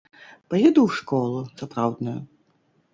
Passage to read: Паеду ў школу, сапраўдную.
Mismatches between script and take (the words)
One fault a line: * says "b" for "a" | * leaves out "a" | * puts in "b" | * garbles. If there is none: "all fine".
all fine